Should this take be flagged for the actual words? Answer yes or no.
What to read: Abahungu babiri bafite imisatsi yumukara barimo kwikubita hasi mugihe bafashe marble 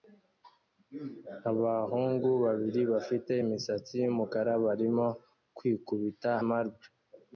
yes